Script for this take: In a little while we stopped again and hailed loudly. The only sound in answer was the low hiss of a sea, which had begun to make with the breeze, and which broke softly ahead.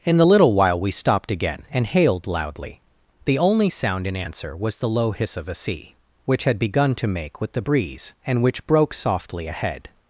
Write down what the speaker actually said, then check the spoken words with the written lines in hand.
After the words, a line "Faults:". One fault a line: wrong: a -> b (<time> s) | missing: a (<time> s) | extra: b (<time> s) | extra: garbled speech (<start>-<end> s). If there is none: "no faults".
In the little while we stopped again and hailed loudly. The only sound in answer was the low hiss of a sea, which had begun to make with the breeze, and which broke softly ahead.
Faults:
wrong: a -> the (0.2 s)